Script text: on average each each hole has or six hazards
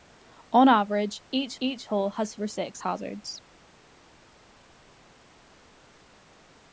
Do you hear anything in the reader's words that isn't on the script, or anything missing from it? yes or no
no